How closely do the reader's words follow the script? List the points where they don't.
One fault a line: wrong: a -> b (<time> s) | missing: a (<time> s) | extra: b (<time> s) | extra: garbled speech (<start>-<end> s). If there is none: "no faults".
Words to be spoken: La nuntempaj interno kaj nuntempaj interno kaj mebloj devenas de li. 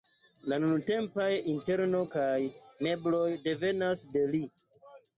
missing: nuntempaj interno kaj (2.3 s)